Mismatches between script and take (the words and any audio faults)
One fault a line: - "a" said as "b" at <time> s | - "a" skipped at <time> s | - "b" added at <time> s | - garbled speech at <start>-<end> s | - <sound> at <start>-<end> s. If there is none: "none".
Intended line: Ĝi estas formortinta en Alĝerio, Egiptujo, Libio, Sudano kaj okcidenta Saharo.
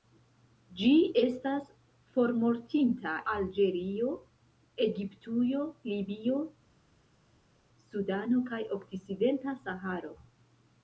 - "en" skipped at 3.2 s